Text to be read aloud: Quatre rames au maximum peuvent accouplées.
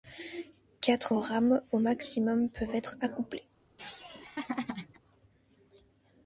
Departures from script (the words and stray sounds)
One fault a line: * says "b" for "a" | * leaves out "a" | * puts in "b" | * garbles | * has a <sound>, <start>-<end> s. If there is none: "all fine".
* puts in "être"
* has a laugh, 3.8-5.0 s